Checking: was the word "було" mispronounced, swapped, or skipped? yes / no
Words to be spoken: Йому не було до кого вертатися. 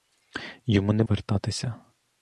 yes